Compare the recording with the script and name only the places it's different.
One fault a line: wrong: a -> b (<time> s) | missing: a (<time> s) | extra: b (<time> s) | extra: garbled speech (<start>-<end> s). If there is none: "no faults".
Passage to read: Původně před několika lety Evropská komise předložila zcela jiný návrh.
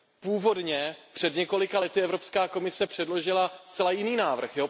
no faults